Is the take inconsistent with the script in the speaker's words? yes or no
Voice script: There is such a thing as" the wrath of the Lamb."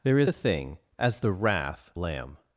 yes